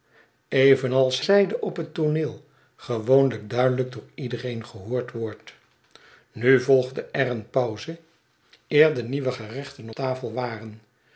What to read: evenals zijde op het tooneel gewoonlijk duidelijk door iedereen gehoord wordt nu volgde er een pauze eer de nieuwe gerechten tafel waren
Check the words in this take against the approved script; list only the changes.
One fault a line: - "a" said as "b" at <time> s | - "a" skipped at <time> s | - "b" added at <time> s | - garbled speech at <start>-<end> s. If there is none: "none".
none